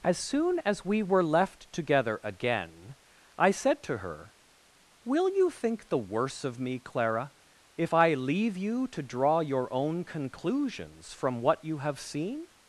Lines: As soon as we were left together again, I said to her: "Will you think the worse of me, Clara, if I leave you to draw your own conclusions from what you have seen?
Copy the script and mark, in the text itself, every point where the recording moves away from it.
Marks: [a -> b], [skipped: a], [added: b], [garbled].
As soon as we were left together again, I said to her: "Will you think the worse of me, Clara, if I leave you to draw your own conclusions from what you have seen?